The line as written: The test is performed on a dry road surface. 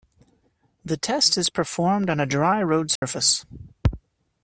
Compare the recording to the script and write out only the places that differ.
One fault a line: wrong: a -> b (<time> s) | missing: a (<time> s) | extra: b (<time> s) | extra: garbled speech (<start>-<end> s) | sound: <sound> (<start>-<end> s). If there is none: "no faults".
sound: dropout (3.0-3.0 s)